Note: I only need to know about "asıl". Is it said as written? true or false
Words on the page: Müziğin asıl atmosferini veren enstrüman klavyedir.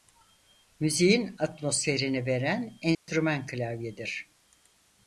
false